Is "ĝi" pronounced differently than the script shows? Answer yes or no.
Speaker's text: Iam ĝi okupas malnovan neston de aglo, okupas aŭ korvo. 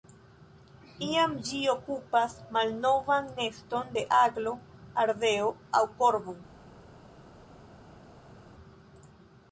no